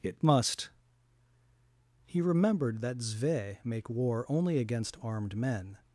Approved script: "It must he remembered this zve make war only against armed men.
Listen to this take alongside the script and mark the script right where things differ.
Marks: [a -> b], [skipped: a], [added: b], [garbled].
"It must he remembered [this -> that] zve make war only against armed men.